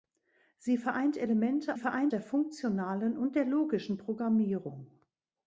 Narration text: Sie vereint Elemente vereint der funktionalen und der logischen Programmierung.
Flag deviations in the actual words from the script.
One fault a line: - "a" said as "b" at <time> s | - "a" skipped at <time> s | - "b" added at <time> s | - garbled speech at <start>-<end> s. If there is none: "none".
none